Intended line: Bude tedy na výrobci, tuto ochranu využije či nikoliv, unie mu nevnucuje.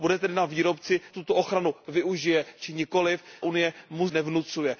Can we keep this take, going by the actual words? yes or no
yes